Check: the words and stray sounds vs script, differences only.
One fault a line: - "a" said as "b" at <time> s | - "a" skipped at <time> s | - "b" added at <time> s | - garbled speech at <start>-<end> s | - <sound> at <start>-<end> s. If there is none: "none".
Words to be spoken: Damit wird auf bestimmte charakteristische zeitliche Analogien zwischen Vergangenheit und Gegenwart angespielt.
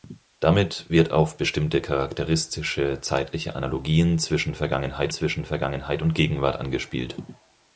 - "zwischen Vergangenheit" added at 5.1 s